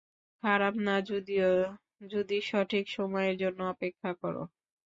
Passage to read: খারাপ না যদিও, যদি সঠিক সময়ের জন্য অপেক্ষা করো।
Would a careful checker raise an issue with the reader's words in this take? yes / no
no